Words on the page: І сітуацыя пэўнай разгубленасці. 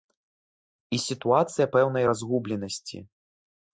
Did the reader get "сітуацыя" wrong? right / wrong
right